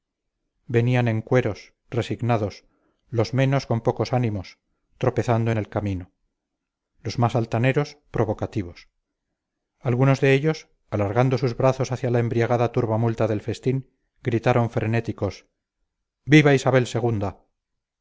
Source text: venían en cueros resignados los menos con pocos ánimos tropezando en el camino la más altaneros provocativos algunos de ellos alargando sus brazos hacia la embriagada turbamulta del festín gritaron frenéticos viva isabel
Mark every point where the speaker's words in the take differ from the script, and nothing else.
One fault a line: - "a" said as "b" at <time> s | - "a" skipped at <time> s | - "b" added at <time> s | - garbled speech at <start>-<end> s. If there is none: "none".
- "la" said as "los" at 7.0 s